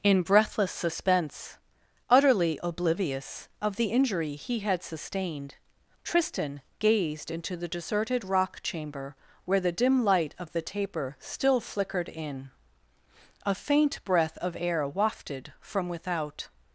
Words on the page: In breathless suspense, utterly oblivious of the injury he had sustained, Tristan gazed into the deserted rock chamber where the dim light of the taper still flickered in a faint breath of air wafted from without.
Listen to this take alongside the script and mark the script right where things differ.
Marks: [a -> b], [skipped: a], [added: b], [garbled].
In breathless suspense, utterly oblivious of the injury he had sustained, Tristan gazed into the deserted rock chamber where the dim light of the taper still flickered in a faint breath of air wafted from without.